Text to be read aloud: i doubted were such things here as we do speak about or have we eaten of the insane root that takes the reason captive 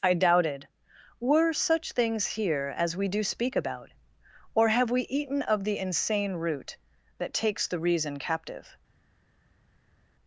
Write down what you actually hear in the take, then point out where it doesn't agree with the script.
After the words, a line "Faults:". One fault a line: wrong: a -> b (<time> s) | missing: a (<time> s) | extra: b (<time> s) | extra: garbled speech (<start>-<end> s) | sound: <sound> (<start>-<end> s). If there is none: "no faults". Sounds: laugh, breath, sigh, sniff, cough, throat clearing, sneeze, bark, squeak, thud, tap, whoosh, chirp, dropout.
i doubted were such things here as we do speak about or have we eaten of the insane root that takes the reason captive
Faults:
no faults